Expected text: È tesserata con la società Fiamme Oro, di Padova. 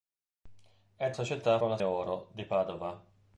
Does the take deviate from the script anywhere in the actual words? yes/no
yes